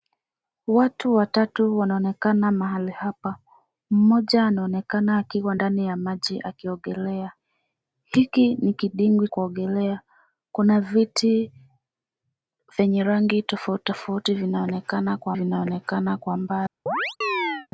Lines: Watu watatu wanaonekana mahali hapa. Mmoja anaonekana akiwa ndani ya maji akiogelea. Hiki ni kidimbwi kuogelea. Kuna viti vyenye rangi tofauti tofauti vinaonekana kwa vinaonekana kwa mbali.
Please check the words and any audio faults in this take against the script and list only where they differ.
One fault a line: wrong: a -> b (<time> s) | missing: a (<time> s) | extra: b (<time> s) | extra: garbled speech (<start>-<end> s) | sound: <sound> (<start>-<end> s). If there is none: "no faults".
sound: chirp (16.9-17.7 s)